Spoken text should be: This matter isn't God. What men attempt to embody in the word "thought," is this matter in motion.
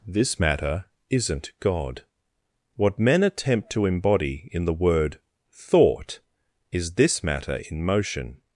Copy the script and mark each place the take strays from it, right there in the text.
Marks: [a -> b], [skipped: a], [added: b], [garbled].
This matter isn't God. What men attempt to embody in the word "thought," is this matter in motion.